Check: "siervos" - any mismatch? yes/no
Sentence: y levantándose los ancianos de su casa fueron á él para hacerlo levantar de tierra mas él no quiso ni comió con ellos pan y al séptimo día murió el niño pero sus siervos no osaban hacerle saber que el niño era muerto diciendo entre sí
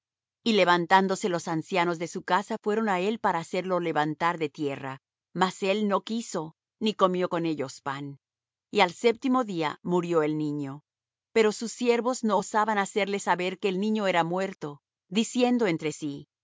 no